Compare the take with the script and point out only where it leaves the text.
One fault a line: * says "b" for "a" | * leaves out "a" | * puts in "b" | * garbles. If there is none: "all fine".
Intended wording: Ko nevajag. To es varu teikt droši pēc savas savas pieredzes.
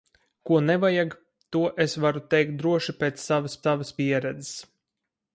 all fine